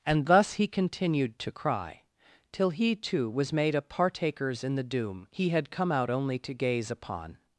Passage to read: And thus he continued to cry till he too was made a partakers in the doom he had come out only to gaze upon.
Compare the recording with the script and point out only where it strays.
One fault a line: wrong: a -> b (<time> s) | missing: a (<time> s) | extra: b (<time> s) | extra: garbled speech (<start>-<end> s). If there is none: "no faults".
no faults